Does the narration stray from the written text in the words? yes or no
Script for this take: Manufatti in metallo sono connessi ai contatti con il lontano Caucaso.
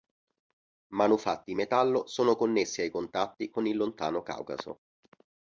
no